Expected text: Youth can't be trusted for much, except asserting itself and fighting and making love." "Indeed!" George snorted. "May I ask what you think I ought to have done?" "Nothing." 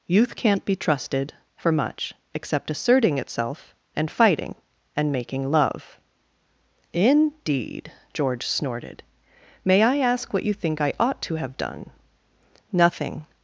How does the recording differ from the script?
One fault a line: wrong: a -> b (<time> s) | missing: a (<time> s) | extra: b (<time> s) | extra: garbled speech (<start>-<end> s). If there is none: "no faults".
no faults